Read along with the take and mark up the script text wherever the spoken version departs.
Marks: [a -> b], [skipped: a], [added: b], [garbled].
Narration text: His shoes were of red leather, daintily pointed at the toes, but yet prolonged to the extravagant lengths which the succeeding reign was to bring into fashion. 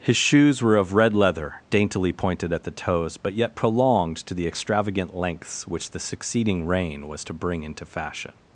His shoes were of red leather, daintily pointed at the toes, but yet prolonged to the extravagant lengths which the succeeding reign was to bring into fashion.